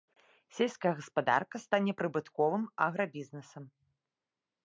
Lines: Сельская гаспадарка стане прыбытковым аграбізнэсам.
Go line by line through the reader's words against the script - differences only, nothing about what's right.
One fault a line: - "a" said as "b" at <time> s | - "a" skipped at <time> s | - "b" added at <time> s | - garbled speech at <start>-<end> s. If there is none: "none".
none